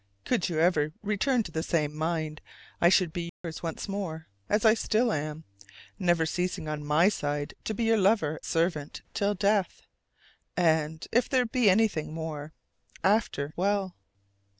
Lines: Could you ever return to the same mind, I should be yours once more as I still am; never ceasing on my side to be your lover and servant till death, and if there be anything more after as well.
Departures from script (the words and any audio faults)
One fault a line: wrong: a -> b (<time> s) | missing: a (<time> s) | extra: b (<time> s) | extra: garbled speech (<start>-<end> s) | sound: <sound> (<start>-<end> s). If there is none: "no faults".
sound: dropout (3.3-3.4 s)
missing: and (8.4 s)
missing: as (13.6 s)